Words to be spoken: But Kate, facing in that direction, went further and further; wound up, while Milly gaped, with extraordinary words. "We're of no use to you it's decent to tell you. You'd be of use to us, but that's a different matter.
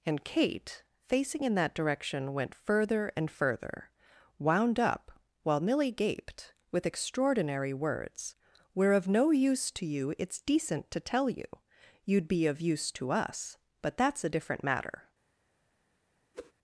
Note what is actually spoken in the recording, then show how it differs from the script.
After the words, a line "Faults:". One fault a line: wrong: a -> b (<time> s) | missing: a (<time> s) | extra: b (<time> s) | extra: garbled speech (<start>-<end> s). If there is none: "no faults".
And Kate, facing in that direction, went further and further; wound up, while Milly gaped, with extraordinary words. "We're of no use to you it's decent to tell you. You'd be of use to us, but that's a different matter.
Faults:
wrong: But -> And (0.1 s)